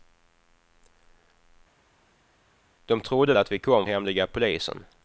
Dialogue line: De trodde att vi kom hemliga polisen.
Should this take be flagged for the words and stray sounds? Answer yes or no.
no